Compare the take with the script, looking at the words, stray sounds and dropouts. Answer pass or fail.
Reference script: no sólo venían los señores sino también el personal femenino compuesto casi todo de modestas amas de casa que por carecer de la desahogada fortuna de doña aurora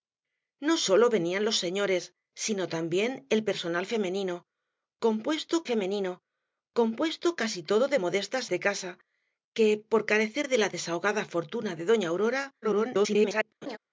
fail